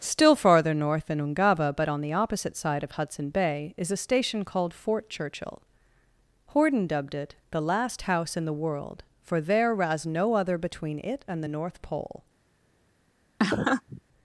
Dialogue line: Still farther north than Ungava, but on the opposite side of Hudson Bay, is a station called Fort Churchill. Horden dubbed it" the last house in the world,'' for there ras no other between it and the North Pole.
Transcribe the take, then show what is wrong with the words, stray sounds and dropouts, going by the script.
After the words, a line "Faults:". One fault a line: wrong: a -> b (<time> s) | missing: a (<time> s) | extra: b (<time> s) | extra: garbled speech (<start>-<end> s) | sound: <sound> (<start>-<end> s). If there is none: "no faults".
Still farther north than Ungava, but on the opposite side of Hudson Bay, is a station called Fort Churchill. Horden dubbed it" the last house in the world,'' for there ras no other between it and the North Pole.
Faults:
sound: laugh (13.4-14.0 s)